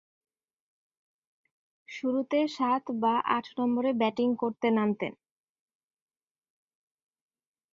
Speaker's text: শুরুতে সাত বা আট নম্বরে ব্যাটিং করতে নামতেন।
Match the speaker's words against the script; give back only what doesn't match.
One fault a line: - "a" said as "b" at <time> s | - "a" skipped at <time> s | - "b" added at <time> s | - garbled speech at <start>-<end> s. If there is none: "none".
none